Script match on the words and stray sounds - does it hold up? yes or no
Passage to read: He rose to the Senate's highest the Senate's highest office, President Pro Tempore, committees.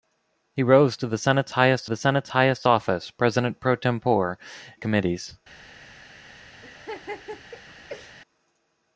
no